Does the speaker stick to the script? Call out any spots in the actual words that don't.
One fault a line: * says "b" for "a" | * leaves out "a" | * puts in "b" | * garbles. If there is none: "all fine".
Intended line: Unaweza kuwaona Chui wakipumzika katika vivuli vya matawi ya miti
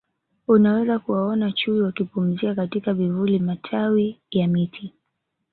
* leaves out "vya"